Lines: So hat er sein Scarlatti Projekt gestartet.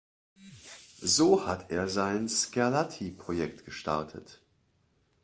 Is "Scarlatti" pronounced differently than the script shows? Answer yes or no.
no